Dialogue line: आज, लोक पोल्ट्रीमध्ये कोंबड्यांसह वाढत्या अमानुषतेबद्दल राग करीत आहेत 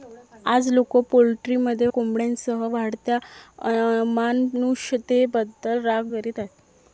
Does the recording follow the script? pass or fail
pass